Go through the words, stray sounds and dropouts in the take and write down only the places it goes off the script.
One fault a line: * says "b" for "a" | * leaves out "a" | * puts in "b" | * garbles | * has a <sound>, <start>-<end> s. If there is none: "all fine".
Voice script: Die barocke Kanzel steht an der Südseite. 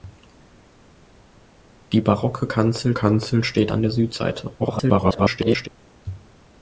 * puts in "Kanzel"
* garbles